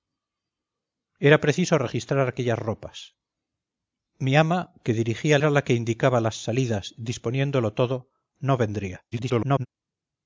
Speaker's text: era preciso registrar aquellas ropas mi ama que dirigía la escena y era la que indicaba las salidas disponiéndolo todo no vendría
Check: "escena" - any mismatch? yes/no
yes